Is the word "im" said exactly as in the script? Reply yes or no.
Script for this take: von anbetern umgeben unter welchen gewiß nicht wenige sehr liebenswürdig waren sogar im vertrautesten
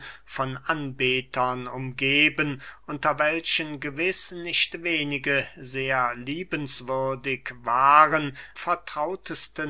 no